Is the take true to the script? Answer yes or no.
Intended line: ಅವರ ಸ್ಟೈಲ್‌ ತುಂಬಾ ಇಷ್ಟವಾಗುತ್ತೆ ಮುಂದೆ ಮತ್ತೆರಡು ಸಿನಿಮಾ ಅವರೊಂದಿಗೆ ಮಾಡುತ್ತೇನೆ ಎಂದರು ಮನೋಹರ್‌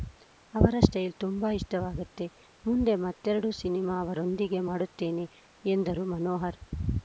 yes